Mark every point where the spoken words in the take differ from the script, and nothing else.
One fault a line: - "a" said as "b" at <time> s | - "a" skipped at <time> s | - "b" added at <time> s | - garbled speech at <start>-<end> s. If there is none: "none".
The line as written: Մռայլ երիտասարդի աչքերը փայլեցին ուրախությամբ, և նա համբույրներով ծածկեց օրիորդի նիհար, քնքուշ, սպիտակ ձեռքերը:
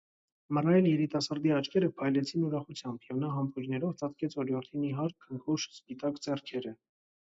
none